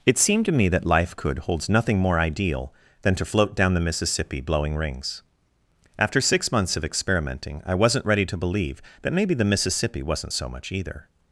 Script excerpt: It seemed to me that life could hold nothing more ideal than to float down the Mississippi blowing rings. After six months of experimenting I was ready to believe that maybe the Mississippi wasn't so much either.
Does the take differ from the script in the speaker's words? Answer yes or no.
yes